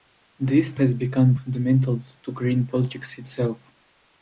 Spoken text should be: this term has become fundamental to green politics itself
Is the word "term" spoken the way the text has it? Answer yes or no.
no